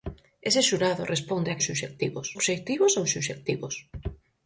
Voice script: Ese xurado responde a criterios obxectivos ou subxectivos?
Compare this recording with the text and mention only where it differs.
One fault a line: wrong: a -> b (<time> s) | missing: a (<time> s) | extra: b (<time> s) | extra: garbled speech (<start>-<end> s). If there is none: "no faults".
wrong: criterios -> subxectivos (1.7 s)